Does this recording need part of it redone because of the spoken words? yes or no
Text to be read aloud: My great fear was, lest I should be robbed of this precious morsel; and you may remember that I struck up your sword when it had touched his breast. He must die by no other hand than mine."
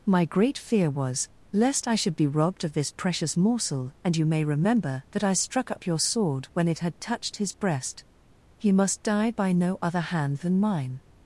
no